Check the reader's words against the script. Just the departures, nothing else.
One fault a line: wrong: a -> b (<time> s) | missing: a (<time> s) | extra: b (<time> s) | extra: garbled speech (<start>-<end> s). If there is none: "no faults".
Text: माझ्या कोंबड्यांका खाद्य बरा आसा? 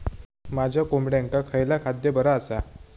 extra: खयला (1.5 s)